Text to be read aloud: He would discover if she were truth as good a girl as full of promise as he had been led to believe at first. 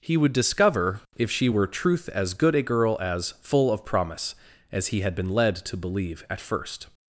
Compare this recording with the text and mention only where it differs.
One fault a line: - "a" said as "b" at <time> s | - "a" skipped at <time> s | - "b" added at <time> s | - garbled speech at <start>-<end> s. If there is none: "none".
none